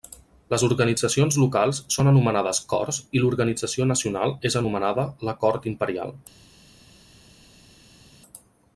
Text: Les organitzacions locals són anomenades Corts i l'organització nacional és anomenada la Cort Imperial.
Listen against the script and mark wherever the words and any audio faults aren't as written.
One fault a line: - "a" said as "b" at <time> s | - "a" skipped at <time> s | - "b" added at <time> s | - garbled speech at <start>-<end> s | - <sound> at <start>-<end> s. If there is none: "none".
none